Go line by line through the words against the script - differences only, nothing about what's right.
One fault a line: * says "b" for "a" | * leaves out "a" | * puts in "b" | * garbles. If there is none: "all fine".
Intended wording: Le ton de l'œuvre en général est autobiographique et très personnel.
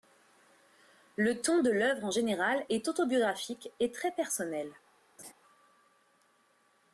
all fine